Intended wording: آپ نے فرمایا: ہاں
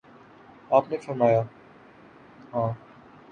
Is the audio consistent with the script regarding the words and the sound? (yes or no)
yes